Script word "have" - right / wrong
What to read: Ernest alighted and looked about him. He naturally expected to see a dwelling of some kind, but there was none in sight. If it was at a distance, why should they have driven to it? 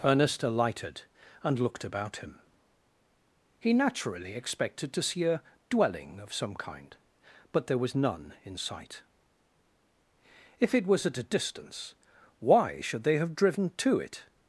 right